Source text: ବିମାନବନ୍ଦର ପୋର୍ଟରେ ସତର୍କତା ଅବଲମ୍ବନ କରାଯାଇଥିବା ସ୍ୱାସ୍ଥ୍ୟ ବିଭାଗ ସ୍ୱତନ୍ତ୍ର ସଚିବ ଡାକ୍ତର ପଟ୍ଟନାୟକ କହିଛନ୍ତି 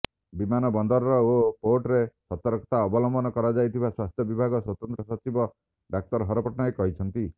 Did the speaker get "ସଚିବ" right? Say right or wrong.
right